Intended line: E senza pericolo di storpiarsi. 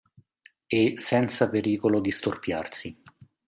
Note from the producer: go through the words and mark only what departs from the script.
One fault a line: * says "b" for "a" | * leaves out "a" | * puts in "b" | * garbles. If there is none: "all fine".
all fine